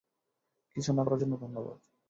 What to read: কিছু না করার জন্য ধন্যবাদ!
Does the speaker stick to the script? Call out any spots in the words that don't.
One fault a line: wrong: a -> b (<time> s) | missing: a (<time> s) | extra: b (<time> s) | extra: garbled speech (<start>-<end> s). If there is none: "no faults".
no faults